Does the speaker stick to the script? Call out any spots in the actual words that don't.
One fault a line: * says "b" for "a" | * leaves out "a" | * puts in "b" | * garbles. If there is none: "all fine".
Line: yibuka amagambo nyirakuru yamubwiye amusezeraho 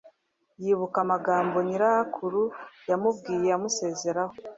all fine